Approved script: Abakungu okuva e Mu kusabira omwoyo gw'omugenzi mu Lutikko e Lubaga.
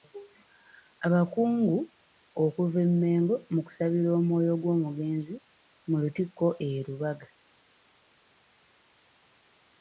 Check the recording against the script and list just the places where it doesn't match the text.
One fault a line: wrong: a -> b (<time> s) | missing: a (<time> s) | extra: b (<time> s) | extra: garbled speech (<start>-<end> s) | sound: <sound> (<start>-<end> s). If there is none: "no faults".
extra: Mengo (3.0 s)